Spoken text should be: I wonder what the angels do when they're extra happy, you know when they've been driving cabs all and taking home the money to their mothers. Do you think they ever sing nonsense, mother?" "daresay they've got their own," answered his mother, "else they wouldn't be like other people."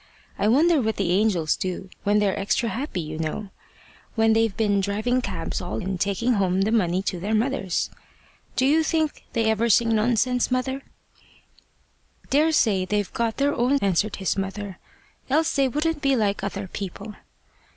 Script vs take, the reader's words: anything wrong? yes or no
no